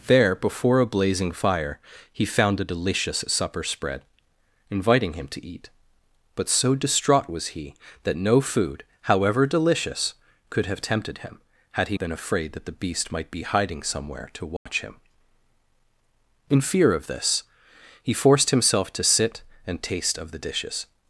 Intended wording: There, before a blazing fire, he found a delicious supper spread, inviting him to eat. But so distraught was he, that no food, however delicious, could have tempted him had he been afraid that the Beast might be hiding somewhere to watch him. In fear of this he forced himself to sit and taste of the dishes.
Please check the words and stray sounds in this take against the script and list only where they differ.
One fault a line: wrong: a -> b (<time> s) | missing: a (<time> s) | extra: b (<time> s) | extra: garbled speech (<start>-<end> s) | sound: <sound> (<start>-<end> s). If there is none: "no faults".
sound: dropout (14.6-14.7 s)